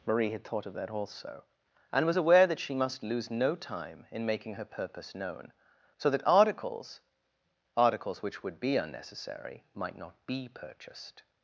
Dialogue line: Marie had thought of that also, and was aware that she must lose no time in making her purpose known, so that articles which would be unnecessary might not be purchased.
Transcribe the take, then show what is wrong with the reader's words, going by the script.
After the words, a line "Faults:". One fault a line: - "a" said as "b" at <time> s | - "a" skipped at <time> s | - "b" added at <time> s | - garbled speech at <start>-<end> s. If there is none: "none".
Marie had thought of that also, and was aware that she must lose no time in making her purpose known, so that articles articles which would be unnecessary might not be purchased.
Faults:
- "articles" added at 7.8 s